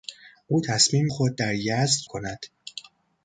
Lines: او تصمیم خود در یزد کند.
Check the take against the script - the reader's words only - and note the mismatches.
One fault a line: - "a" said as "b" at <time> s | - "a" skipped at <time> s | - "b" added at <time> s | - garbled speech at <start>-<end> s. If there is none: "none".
none